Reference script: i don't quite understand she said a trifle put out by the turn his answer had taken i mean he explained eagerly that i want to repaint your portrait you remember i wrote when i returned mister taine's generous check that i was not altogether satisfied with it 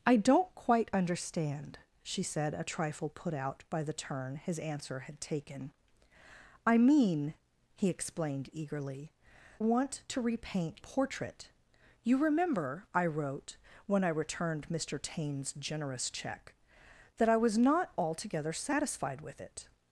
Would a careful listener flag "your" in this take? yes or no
yes